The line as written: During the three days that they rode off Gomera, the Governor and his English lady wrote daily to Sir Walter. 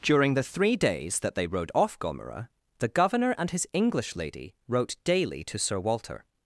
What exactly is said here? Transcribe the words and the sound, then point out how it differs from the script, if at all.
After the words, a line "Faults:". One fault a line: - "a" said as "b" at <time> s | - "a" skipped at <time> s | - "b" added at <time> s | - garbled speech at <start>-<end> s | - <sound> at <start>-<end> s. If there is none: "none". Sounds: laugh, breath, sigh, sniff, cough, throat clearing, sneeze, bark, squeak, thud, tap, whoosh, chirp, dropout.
During the three days that they rode off Gomera, the Governor and his English lady wrote daily to Sir Walter.
Faults:
none